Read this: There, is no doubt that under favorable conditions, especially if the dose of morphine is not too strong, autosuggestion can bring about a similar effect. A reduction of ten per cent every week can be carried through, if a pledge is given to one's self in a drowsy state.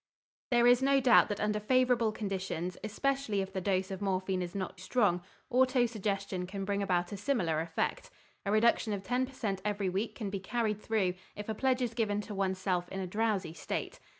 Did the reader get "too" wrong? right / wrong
wrong